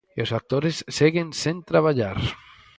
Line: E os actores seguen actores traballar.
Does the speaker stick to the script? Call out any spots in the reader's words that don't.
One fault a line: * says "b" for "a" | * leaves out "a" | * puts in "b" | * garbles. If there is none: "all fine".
* says "sen" for "actores"